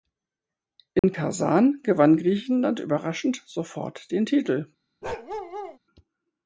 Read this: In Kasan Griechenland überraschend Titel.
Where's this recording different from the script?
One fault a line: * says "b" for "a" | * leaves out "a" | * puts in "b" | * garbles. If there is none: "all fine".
* puts in "gewann"
* puts in "sofort den"